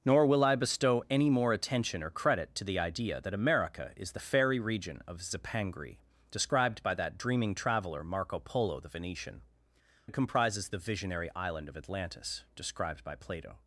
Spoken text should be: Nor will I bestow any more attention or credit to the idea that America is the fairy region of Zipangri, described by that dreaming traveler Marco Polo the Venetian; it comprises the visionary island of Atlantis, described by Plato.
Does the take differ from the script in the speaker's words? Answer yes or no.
no